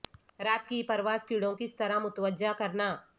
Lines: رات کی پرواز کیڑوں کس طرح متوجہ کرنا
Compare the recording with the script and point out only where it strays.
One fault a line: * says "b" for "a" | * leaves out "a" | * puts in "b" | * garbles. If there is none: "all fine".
all fine